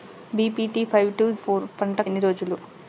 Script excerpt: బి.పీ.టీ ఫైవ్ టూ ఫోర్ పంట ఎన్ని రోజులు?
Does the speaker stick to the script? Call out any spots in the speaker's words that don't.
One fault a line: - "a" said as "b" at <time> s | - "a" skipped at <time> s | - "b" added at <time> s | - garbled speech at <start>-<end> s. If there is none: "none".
none